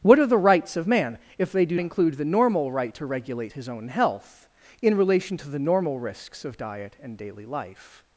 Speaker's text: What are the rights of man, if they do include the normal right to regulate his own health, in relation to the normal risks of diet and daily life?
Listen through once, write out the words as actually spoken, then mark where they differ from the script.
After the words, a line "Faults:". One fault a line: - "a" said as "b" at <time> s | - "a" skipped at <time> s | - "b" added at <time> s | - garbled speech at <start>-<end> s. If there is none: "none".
What are the rights of man, if they do include the normal right to regulate his own health, in relation to the normal risks of diet and daily life?
Faults:
none